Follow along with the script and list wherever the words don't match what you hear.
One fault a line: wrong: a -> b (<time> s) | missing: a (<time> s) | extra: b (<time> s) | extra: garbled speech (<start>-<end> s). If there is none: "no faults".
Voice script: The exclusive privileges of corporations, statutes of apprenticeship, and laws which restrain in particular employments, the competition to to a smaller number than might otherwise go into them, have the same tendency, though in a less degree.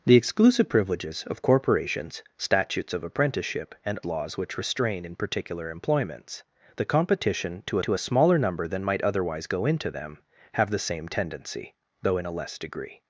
no faults